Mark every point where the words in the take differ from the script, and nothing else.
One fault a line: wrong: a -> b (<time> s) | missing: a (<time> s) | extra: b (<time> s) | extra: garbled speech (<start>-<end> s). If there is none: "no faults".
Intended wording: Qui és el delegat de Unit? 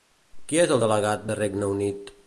extra: Regne (1.4 s)